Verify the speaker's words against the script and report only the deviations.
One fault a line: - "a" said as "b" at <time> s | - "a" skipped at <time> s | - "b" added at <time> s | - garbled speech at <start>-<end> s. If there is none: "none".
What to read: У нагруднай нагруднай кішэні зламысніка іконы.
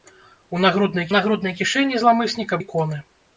none